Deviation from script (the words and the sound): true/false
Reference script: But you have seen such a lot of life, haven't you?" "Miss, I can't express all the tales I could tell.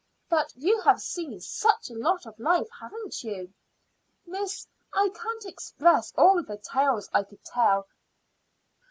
false